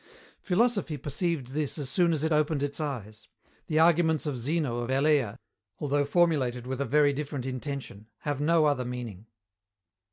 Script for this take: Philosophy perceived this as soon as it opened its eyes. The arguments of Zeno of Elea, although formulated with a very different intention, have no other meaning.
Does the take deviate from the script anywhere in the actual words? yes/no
no